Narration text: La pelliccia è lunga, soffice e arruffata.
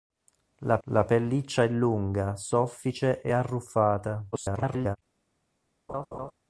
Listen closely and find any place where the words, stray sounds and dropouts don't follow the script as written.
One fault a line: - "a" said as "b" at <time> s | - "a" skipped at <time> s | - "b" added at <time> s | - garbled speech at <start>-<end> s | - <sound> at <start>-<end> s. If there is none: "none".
- "la" added at 0.9 s
- garbled speech at 4.3-5.0 s
- laugh at 5.9-6.3 s